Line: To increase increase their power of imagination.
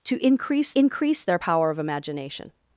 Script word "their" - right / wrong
right